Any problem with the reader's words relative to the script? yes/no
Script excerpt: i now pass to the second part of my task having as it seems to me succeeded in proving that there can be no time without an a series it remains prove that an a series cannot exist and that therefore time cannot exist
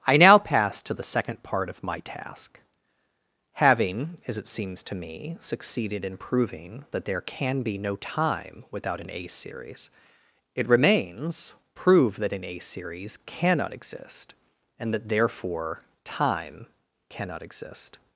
no